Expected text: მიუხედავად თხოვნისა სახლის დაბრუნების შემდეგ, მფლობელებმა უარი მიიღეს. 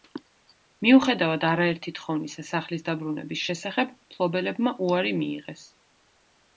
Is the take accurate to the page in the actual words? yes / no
no